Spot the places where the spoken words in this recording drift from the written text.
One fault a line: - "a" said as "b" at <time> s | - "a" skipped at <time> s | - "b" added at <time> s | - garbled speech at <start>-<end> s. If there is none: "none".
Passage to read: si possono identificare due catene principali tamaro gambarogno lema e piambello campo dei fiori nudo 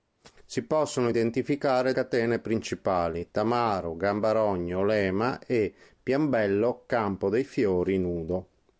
- "due" skipped at 1.9 s